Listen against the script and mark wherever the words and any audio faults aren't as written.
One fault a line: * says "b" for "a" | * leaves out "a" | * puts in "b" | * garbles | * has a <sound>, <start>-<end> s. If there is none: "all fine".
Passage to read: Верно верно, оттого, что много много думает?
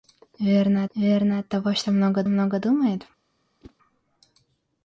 * has a whoosh, 3.6-3.8 s